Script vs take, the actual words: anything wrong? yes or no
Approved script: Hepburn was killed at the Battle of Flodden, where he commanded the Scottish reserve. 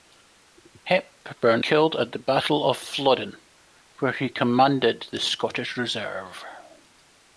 yes